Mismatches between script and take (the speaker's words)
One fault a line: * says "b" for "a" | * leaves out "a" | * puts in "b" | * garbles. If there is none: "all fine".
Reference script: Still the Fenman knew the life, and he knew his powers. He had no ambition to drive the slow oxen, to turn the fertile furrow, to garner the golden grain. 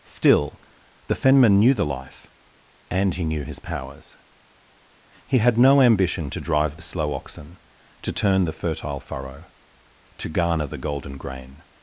all fine